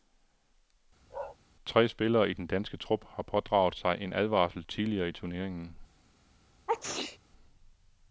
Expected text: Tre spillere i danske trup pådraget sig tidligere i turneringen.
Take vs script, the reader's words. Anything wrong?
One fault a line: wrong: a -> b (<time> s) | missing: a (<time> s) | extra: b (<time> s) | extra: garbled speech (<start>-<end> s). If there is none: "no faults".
extra: den (2.3 s)
extra: har (3.1 s)
extra: en advarsel (4.0 s)